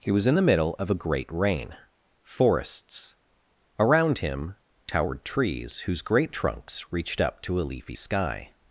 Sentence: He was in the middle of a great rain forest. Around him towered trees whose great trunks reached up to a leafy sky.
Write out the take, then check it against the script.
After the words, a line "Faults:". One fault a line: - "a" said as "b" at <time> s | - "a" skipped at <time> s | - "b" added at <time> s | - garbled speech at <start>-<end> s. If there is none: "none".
He was in the middle of a great rain forests. Around him towered trees whose great trunks reached up to a leafy sky.
Faults:
- "forest" said as "forests" at 2.2 s